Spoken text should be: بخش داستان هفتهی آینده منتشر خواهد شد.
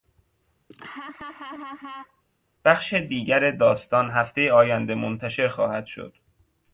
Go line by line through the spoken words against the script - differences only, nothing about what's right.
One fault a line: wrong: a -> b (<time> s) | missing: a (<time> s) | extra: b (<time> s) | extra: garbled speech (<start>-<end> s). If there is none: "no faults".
extra: دیگر (2.9 s)